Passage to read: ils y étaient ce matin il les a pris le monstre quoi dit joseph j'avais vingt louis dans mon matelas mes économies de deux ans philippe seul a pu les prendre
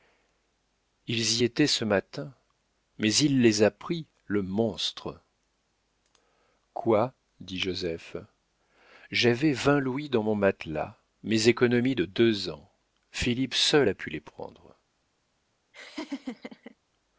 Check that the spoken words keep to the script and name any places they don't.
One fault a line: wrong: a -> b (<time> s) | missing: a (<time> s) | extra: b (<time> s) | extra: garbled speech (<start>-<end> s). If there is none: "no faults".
extra: mais (3.0 s)